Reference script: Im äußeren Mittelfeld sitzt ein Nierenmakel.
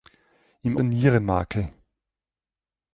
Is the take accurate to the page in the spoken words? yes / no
no